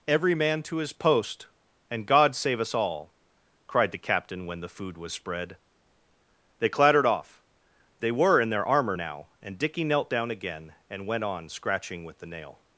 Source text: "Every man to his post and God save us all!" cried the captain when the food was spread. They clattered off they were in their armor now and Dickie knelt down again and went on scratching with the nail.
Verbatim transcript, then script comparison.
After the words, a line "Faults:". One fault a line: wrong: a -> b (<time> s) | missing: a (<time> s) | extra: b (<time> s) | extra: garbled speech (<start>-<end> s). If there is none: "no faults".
"Every man to his post and God save us all!" cried the captain when the food was spread. They clattered off they were in their armor now and Dickie knelt down again and went on scratching with the nail.
Faults:
no faults